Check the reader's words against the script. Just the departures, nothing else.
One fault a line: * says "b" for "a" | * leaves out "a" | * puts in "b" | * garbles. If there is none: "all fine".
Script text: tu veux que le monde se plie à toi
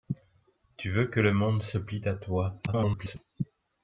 * garbles